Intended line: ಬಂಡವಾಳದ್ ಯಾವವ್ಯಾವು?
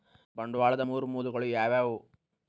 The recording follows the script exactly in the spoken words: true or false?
false